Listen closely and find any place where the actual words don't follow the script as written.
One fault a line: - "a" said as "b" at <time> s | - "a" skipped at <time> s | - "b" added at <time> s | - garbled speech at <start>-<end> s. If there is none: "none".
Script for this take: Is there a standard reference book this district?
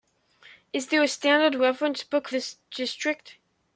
none